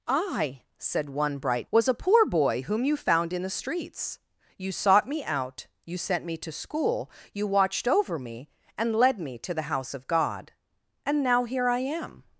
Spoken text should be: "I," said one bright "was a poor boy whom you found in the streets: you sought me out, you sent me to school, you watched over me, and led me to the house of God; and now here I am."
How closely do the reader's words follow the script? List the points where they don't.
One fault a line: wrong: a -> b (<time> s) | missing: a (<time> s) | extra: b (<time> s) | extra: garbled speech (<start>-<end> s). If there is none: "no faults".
no faults